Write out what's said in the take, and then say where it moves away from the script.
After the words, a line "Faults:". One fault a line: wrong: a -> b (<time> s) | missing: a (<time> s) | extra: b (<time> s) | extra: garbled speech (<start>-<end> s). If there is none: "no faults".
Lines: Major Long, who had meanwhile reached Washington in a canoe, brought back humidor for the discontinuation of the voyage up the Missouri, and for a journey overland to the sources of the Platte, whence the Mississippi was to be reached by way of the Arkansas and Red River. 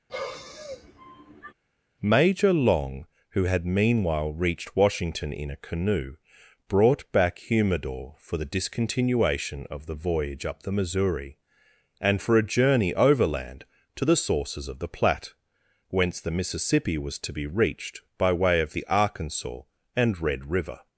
Major Long, who had meanwhile reached Washington in a canoe, brought back humidor for the discontinuation of the voyage up the Missouri, and for a journey overland to the sources of the Platte, whence the Mississippi was to be reached by way of the Arkansas and Red River.
Faults:
no faults